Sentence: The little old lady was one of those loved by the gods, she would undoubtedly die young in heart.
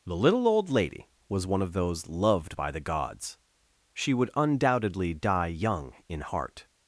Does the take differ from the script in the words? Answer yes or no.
no